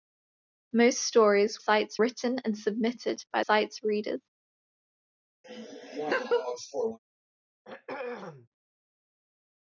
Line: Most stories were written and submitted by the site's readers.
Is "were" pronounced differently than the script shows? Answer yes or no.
yes